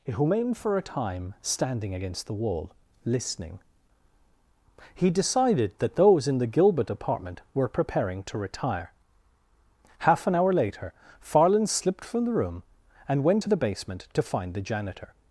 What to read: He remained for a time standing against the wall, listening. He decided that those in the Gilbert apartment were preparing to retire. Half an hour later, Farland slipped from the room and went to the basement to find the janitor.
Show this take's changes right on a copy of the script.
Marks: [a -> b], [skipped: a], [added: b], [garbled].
He remained for a time standing against the wall, listening. He decided that those in the Gilbert apartment were preparing to retire. Half an hour later, Farland slipped from the room and went to the basement to find the janitor.